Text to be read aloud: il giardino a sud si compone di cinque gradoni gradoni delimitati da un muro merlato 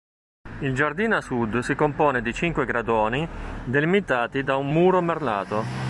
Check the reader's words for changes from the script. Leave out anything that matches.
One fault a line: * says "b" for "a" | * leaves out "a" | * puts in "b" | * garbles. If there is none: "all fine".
* leaves out "gradoni"